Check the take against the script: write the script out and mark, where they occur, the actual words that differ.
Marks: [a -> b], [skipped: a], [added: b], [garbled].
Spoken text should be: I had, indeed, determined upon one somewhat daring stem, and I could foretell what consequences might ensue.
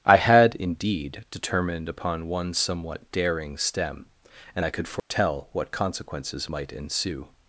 I had, indeed, determined upon one somewhat daring stem, and I could foretell what consequences might ensue.